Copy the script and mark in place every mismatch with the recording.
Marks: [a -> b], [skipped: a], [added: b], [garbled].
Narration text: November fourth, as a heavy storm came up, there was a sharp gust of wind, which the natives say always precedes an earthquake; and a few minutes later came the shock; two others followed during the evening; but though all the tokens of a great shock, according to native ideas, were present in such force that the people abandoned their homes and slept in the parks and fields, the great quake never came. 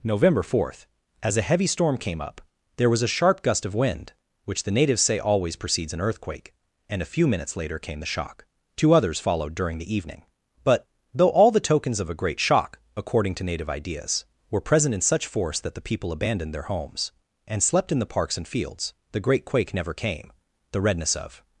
November fourth, as a heavy storm came up, there was a sharp gust of wind, which the natives say always precedes an earthquake; and a few minutes later came the shock; two others followed during the evening; but though all the tokens of a great shock, according to native ideas, were present in such force that the people abandoned their homes and slept in the parks and fields, the great quake never came. [added: The redness of]